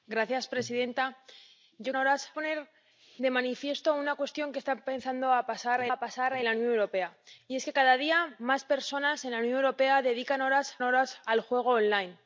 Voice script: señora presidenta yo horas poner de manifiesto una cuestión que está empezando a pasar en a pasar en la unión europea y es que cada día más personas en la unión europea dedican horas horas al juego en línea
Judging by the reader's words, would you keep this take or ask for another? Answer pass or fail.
pass